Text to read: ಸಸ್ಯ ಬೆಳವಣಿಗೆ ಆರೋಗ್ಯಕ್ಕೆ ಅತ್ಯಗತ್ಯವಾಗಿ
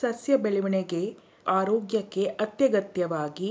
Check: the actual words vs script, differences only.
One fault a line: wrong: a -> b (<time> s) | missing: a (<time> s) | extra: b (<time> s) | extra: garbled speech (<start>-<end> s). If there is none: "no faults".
no faults